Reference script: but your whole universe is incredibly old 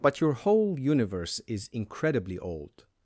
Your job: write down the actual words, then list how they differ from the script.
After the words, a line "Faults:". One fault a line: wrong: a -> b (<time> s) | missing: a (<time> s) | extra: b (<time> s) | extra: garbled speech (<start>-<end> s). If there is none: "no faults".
but your whole universe is incredibly old
Faults:
no faults